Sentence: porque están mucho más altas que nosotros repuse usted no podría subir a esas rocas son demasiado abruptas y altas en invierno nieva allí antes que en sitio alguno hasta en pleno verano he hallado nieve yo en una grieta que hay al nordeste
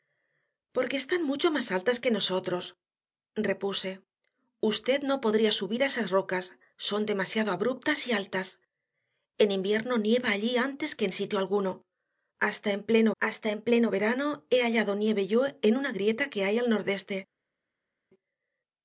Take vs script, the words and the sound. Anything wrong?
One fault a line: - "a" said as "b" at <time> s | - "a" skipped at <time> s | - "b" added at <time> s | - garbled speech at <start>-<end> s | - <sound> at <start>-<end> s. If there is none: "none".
- "hasta en pleno" added at 13.2 s